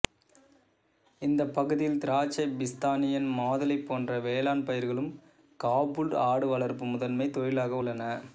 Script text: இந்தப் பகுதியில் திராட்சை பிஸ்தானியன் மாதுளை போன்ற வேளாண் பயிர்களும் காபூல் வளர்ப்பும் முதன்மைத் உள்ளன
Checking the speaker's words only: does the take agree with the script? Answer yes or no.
no